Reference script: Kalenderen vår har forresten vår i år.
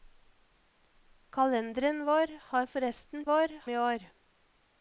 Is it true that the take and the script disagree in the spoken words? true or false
false